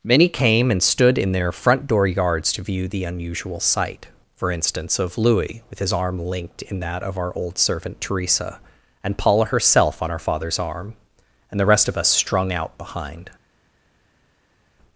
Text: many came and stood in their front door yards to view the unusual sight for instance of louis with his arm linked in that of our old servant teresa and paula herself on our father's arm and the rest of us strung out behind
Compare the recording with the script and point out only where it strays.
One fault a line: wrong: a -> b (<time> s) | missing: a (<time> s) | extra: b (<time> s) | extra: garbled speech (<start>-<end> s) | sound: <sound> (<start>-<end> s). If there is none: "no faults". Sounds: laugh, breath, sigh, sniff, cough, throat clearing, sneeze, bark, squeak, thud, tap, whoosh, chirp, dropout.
no faults